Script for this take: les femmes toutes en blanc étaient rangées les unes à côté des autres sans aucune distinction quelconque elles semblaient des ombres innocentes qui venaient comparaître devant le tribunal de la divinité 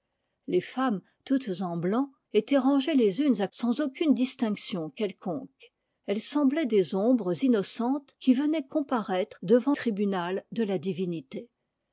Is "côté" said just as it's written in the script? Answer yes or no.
no